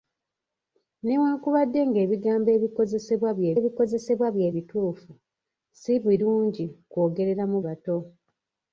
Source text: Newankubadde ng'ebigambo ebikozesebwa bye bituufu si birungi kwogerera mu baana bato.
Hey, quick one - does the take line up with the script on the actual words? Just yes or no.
no